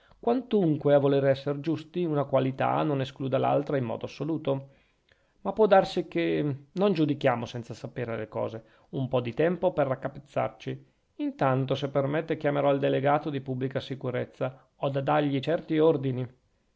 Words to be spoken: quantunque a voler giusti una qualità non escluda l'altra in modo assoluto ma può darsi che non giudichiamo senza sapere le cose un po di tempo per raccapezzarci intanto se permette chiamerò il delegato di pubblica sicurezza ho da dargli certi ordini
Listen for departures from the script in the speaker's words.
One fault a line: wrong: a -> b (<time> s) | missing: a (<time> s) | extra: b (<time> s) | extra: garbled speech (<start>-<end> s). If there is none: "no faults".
extra: esser (1.2 s)